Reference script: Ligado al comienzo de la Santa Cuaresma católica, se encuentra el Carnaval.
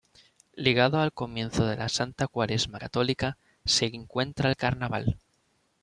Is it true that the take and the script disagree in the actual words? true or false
false